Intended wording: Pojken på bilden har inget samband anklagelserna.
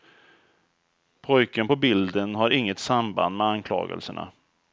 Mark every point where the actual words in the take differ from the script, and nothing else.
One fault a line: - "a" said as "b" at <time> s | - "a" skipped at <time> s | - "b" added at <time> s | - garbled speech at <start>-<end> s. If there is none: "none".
- "med" added at 3.4 s